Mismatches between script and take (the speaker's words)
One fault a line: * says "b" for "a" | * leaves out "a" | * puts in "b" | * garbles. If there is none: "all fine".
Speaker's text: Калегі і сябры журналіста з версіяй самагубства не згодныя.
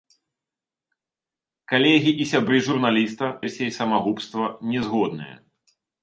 * leaves out "з"